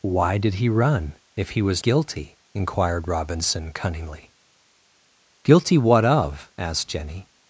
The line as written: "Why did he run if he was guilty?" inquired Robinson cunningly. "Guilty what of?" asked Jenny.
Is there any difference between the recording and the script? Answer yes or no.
no